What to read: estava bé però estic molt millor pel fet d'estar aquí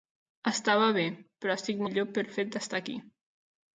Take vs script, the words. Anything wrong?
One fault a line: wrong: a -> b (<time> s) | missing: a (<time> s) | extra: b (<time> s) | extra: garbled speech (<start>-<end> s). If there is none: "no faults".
missing: molt (1.8 s)